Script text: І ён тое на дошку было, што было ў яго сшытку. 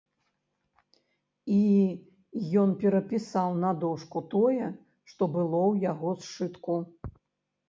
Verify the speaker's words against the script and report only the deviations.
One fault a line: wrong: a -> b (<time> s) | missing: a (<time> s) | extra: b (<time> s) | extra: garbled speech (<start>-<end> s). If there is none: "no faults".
wrong: тое -> перапісаў (2.8 s)
wrong: было -> тое (4.4 s)